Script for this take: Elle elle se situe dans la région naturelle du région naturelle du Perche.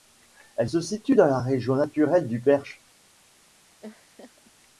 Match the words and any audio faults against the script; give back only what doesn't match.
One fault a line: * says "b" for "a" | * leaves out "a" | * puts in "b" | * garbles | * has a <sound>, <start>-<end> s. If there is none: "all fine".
* leaves out "elle"
* leaves out "région naturelle du"
* has a laugh, 3.8-4.5 s